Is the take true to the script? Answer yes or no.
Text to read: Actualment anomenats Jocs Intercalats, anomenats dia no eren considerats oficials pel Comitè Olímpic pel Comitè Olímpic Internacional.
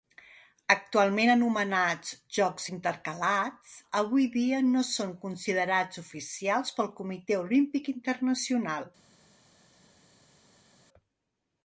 no